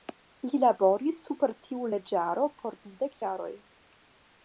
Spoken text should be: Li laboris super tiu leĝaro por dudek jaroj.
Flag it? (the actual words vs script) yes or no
no